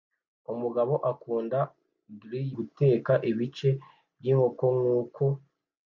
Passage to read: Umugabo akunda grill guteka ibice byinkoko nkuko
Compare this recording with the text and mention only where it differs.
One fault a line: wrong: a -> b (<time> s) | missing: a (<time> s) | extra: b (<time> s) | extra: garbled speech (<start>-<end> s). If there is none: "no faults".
no faults